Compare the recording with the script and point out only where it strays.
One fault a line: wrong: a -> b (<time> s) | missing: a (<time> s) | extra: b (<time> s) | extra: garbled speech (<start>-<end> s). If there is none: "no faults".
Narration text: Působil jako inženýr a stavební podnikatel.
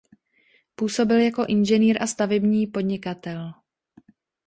no faults